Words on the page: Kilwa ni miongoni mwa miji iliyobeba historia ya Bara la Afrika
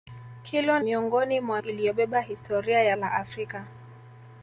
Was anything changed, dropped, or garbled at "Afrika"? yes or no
no